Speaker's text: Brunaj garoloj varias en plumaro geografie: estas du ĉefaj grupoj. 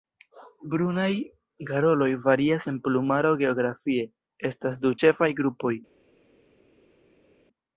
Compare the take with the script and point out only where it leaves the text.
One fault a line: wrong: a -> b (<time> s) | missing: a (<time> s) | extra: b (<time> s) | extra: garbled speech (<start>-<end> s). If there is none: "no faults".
no faults